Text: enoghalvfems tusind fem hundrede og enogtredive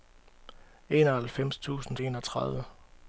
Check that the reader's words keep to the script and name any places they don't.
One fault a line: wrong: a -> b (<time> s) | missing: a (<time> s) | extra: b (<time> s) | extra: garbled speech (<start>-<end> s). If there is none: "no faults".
missing: fem hundrede og (2.0 s)